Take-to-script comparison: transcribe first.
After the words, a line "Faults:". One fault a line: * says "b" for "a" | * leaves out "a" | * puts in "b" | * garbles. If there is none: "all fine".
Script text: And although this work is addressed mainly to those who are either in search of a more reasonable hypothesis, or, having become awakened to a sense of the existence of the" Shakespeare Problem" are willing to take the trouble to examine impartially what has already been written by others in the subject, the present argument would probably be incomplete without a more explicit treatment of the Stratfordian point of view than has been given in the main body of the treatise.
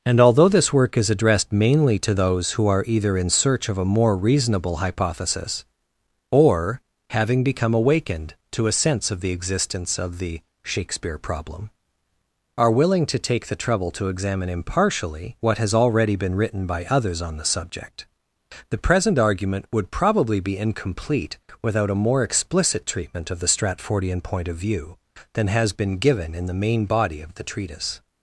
And although this work is addressed mainly to those who are either in search of a more reasonable hypothesis, or, having become awakened to a sense of the existence of the" Shakespeare Problem" are willing to take the trouble to examine impartially what has already been written by others on the subject, the present argument would probably be incomplete without a more explicit treatment of the Stratfordian point of view than has been given in the main body of the treatise.
Faults:
* says "on" for "in"